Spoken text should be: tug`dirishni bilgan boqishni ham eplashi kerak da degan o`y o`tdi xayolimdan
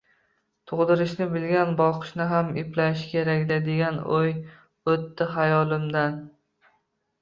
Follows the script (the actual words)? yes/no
yes